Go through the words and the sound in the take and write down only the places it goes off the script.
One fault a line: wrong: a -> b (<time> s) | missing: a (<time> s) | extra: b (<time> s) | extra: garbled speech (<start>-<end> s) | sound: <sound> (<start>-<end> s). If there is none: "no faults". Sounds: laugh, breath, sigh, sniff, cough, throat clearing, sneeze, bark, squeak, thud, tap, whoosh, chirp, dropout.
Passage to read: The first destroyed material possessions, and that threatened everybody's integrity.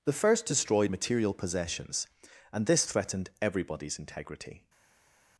wrong: that -> this (2.7 s)